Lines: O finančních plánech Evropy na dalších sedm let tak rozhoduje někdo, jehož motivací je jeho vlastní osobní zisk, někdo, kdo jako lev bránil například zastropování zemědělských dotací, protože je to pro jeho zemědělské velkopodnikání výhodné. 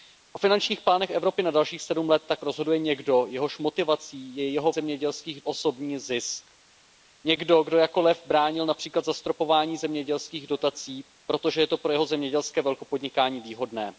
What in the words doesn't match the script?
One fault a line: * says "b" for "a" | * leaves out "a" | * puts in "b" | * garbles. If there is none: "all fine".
* says "zemědělských" for "vlastní"